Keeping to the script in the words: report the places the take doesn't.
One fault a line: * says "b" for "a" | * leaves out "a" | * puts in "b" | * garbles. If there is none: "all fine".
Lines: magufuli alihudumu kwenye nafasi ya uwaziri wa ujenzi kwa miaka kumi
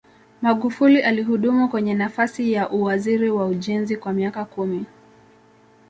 all fine